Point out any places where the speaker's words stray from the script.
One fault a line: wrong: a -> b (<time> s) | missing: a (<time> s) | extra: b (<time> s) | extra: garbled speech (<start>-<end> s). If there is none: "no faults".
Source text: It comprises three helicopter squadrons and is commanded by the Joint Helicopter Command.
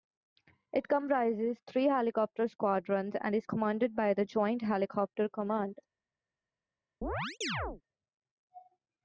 no faults